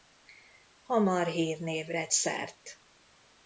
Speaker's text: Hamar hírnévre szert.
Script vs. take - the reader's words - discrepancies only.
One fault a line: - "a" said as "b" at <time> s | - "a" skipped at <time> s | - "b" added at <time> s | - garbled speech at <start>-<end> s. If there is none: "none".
none